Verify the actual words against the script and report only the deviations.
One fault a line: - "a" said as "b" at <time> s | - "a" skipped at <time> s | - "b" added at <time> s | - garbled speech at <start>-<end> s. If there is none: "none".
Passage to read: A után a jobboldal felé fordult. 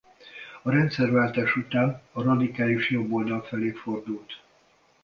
- "rendszerváltás" added at 0.7 s
- "radikális" added at 2.2 s